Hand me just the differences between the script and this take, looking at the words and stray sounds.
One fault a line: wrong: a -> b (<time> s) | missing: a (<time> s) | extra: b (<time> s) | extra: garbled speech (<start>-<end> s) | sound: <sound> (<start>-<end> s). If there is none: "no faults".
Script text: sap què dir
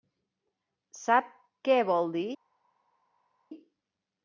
extra: vol (1.9 s)